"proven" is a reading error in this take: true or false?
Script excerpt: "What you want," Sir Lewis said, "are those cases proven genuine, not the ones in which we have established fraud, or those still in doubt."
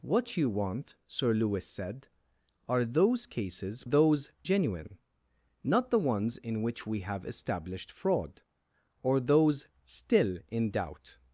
true